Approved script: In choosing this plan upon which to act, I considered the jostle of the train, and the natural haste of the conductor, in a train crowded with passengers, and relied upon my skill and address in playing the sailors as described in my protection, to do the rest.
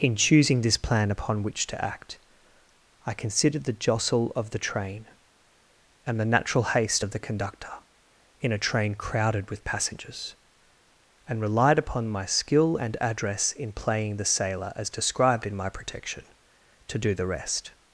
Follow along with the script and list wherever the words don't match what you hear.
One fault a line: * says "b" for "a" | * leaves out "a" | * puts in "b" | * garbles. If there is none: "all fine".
* says "sailor" for "sailors"